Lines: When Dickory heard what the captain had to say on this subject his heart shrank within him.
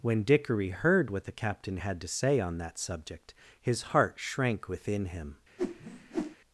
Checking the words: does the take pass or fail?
fail